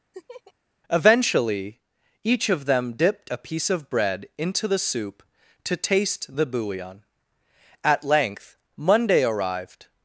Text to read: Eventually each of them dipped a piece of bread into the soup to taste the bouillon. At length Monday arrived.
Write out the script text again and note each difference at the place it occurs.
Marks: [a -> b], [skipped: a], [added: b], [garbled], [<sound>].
[laugh] Eventually each of them dipped a piece of bread into the soup to taste the bouillon. At length Monday arrived.